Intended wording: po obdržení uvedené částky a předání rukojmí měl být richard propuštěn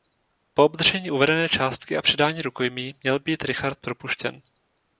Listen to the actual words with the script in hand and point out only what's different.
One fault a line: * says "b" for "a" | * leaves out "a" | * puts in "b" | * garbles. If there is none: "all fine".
all fine